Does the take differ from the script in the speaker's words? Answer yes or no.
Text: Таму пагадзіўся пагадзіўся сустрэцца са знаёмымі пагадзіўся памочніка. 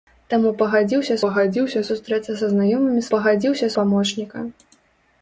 no